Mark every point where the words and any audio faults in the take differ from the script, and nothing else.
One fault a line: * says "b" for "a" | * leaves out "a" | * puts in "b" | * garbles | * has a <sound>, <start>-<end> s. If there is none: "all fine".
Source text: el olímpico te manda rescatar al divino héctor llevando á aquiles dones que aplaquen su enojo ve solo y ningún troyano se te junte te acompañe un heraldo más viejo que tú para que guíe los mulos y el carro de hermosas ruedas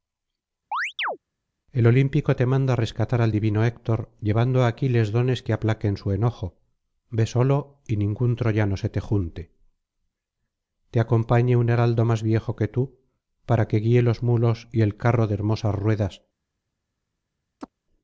* has a chirp, 0.7-1.2 s
* has a chirp, 17.6-17.7 s